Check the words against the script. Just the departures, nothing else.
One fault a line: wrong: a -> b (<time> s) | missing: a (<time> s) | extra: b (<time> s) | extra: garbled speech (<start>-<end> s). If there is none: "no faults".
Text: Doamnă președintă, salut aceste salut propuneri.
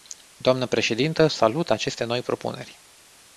wrong: salut -> noi (2.0 s)